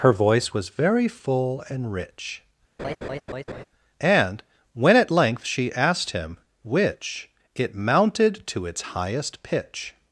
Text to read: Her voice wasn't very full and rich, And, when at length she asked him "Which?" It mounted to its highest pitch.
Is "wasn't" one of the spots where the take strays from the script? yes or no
yes